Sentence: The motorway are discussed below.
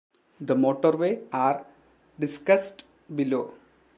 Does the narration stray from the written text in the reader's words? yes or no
no